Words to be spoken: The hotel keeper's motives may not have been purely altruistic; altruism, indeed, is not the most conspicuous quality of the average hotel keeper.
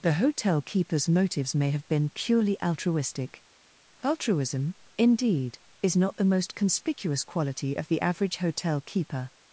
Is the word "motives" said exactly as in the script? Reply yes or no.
yes